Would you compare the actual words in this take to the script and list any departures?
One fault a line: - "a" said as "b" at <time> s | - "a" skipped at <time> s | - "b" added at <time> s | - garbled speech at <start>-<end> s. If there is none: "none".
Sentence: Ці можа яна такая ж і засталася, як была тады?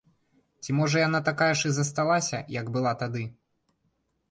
none